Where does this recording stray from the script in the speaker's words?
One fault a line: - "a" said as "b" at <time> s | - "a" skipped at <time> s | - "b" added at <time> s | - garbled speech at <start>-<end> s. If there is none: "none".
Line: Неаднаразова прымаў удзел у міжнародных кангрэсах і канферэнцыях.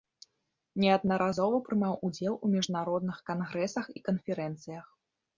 none